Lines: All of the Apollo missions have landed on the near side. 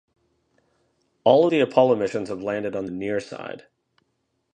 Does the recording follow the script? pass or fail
pass